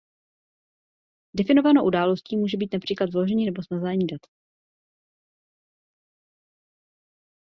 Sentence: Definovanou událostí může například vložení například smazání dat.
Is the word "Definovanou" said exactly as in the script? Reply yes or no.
yes